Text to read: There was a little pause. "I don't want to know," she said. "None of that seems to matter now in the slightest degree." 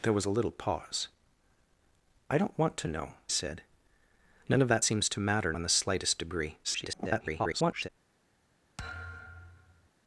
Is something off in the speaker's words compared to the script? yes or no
yes